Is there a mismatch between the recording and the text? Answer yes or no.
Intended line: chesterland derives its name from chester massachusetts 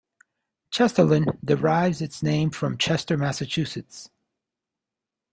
no